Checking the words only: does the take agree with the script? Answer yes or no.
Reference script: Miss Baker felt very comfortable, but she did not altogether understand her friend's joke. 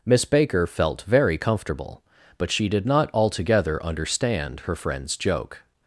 yes